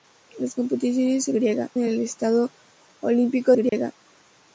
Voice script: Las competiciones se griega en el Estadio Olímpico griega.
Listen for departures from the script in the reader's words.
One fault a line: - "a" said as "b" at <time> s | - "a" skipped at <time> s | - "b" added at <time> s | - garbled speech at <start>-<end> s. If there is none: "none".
none